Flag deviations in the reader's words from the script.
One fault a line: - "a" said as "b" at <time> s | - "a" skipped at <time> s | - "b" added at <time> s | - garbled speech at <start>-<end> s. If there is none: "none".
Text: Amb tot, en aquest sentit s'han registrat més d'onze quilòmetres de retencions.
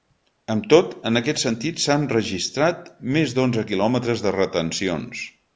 none